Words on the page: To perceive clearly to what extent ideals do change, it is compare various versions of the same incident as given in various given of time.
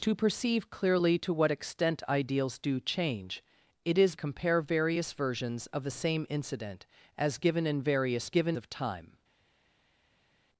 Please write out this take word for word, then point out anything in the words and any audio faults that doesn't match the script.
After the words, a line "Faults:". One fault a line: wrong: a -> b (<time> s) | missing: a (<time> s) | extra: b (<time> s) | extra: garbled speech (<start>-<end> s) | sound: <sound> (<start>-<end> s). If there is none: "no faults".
To perceive clearly to what extent ideals do change, it is compare various versions of the same incident as given in various given of time.
Faults:
no faults